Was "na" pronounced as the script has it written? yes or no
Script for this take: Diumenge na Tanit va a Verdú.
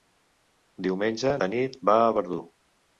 no